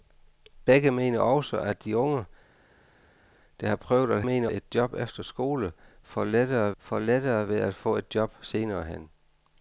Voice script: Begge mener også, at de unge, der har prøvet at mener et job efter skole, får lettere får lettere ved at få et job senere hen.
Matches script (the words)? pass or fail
pass